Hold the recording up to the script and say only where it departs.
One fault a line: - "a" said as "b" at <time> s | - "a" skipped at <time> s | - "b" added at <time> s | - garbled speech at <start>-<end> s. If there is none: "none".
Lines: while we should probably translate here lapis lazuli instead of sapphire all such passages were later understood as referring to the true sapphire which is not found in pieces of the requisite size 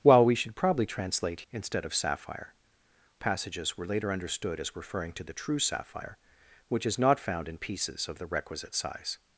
- "here lapis lazuli" skipped at 1.4 s
- "all such" skipped at 2.5 s